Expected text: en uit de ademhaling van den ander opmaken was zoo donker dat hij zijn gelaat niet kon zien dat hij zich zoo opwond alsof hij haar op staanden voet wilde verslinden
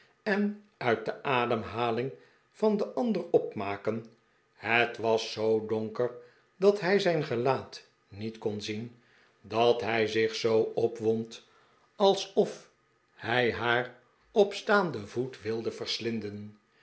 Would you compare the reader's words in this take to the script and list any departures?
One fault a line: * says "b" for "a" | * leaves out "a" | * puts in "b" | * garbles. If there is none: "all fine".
* puts in "het"